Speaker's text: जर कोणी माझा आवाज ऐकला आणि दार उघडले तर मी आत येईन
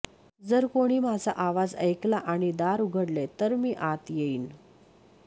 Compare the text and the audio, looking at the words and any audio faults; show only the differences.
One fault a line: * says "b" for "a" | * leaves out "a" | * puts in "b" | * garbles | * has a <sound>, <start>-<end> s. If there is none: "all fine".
all fine